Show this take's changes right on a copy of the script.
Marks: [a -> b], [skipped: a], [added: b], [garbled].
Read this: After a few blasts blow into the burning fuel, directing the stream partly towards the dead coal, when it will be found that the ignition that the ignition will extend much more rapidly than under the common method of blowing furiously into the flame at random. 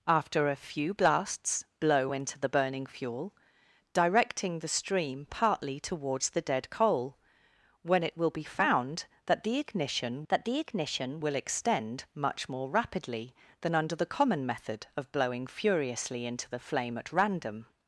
After a few blasts blow into the burning fuel, directing the stream partly towards the dead coal, when it will be found that the ignition that the ignition will extend much more rapidly than under the common method of blowing furiously into the flame at random.